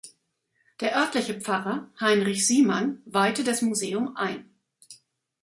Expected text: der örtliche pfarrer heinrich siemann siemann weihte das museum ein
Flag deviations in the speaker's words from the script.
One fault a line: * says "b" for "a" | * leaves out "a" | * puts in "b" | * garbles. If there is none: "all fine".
* leaves out "siemann"